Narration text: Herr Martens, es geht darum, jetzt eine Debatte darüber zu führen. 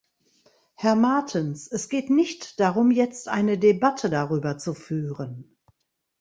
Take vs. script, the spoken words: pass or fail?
fail